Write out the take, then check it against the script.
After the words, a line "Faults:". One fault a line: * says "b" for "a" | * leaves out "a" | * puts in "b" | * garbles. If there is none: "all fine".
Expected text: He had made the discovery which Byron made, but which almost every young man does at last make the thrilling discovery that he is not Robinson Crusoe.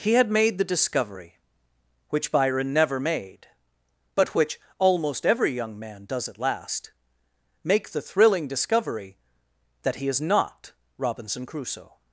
He had made the discovery which Byron never made, but which almost every young man does at last make the thrilling discovery that he is not Robinson Crusoe.
Faults:
* puts in "never"